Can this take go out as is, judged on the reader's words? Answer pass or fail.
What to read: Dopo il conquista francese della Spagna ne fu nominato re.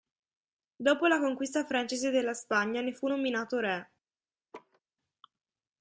fail